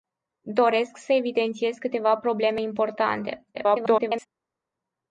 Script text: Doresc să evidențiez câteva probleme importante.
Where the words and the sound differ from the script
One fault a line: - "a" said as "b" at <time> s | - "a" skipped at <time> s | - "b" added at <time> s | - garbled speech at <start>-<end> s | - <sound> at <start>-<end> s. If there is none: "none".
- garbled speech at 3.5-4.3 s